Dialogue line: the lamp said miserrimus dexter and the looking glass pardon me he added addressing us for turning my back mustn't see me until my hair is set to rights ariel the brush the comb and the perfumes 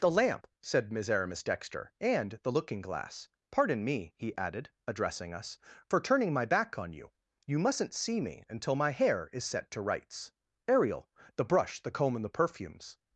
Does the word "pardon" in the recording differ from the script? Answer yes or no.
no